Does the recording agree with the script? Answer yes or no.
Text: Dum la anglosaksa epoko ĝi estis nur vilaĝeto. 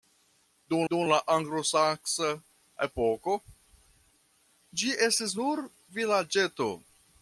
no